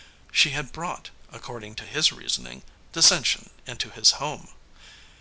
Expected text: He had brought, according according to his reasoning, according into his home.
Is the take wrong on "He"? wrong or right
wrong